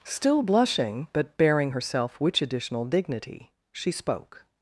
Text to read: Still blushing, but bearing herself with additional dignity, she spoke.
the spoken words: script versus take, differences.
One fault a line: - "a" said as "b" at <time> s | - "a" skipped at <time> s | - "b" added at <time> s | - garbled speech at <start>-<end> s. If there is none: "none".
- "with" said as "which" at 2.2 s